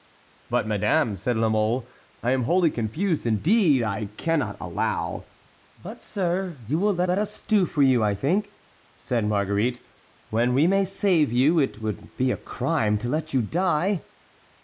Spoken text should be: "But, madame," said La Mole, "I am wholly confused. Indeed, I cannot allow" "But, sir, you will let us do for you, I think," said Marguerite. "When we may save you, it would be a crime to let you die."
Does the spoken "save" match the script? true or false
true